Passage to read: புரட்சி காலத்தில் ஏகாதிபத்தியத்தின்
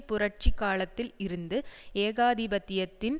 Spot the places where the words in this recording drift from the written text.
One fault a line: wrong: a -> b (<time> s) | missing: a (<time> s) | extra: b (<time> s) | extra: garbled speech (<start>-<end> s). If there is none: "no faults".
extra: இருந்து (1.2 s)